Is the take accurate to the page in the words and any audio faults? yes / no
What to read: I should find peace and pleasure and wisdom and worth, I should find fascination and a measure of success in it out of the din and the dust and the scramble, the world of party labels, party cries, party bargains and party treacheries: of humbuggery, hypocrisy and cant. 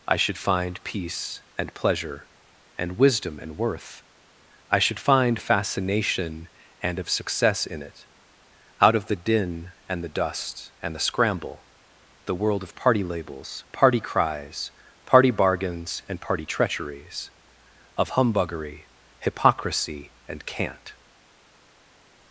no